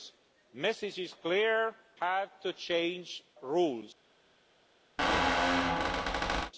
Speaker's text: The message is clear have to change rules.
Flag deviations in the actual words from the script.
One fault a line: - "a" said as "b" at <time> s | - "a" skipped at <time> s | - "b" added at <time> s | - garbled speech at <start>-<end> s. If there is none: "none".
none